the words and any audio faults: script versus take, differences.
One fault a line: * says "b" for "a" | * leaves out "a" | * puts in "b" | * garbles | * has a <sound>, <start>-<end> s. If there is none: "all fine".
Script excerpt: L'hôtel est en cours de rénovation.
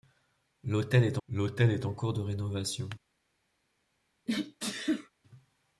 * puts in "l'hôtel est"
* has a sneeze, 4.3-5.1 s